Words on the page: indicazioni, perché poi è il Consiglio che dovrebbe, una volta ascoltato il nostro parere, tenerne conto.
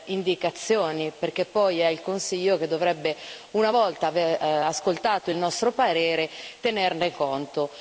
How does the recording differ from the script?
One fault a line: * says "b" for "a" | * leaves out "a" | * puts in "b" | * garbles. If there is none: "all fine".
all fine